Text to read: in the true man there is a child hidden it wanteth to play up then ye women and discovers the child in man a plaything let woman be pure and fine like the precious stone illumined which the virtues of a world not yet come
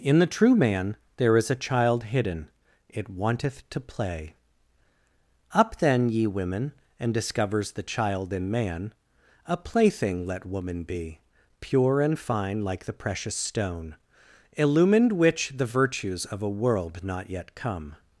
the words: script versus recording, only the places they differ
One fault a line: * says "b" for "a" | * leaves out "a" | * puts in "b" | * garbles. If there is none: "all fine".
all fine